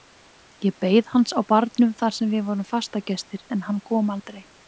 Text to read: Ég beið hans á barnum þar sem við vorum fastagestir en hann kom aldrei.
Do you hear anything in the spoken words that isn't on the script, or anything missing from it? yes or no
no